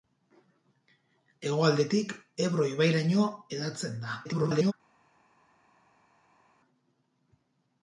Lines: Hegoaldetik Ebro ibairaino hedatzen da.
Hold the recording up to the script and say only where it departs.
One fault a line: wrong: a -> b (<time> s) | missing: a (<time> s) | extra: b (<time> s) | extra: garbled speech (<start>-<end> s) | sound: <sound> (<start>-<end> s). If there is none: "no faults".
extra: garbled speech (4.2-4.7 s)